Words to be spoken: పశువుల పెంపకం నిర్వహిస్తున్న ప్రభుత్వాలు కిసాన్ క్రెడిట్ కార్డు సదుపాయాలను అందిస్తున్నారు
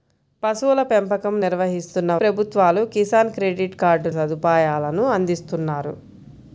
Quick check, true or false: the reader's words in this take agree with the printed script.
true